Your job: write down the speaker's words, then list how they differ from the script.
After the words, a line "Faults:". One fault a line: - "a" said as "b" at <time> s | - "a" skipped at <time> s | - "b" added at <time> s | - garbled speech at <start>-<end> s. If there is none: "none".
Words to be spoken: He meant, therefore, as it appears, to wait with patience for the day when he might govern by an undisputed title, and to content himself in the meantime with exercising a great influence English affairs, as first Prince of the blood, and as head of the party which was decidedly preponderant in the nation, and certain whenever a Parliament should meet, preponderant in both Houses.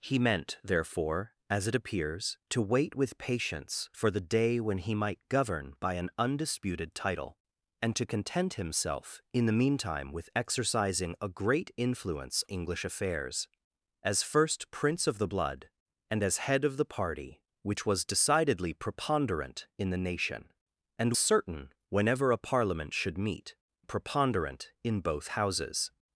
He meant, therefore, as it appears, to wait with patience for the day when he might govern by an undisputed title, and to content himself in the meantime with exercising a great influence English affairs, as first Prince of the blood, and as head of the party which was decidedly preponderant in the nation, and certain whenever a Parliament should meet, preponderant in both Houses.
Faults:
none